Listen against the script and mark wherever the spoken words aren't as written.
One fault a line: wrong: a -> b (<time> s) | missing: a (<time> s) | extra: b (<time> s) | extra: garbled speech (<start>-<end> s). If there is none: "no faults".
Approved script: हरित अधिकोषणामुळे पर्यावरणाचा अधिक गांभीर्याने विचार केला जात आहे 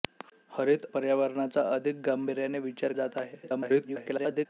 missing: अधिकोषणामुळे (0.8 s)
missing: केला (2.9 s)
extra: garbled speech (3.4-4.5 s)